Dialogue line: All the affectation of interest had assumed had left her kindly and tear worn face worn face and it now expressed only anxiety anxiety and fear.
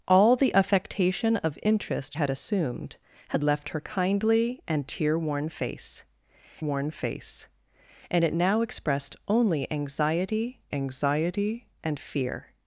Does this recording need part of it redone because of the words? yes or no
no